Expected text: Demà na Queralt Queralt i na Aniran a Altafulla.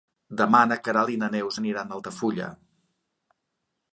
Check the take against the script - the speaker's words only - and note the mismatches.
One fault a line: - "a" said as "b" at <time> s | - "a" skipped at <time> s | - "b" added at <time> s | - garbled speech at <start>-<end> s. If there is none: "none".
- "Queralt" skipped at 1.1 s
- "Neus" added at 1.4 s